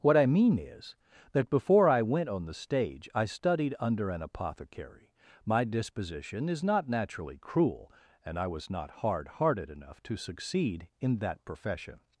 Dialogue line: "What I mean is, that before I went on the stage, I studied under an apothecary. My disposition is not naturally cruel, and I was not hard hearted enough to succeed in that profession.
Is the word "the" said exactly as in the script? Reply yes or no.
yes